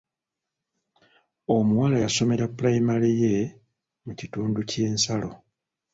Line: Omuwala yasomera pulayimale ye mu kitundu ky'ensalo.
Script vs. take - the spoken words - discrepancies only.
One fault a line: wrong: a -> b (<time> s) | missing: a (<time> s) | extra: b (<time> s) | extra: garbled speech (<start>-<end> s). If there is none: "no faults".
no faults